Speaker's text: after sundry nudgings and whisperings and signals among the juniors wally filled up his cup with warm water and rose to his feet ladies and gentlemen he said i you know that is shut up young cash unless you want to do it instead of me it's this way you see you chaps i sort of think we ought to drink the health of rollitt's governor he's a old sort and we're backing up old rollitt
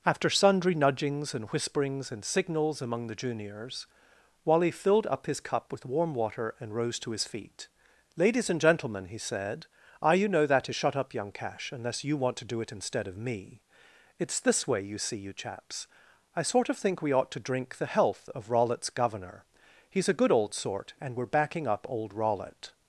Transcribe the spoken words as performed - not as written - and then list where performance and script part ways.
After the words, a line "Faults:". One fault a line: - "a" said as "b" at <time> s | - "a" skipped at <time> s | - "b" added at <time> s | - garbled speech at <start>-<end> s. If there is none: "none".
after sundry nudgings and whisperings and signals among the juniors wally filled up his cup with warm water and rose to his feet ladies and gentlemen he said i you know that is shut up young cash unless you want to do it instead of me it's this way you see you chaps i sort of think we ought to drink the health of rollitt's governor he's a good old sort and we're backing up old rollitt
Faults:
- "good" added at 20.2 s